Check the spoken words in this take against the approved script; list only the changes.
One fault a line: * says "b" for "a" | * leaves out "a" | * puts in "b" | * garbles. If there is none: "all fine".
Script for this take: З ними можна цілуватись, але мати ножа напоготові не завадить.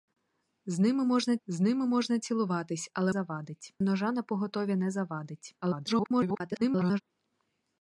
* puts in "з ними можна"
* says "завадить" for "мати"
* garbles